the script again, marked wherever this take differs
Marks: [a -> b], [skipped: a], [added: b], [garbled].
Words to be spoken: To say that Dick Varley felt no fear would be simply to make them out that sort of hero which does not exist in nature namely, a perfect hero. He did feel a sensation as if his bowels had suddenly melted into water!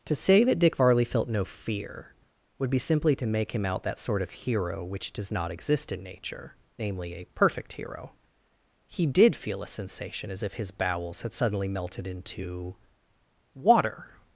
To say that Dick Varley felt no fear would be simply to make [them -> him] out that sort of hero which does not exist in nature namely, a perfect hero. He did feel a sensation as if his bowels had suddenly melted into water!